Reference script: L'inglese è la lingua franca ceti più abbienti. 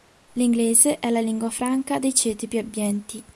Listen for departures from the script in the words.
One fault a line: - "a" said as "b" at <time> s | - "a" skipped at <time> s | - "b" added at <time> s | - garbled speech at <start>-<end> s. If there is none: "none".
- "dei" added at 2.0 s